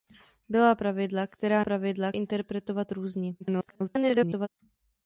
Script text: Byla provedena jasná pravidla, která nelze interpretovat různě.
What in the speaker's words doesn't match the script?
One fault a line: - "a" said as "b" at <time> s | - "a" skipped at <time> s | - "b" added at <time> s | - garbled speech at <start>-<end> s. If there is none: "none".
- "provedena jasná" skipped at 0.8 s
- "nelze" said as "pravidla" at 1.6 s
- garbled speech at 3.4-4.5 s